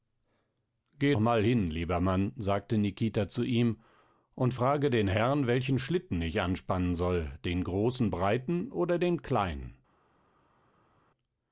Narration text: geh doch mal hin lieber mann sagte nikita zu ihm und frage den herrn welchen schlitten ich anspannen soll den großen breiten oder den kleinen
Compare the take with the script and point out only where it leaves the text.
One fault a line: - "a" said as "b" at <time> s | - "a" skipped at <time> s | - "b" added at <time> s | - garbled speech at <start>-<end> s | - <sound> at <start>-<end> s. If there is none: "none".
- "doch" skipped at 1.1 s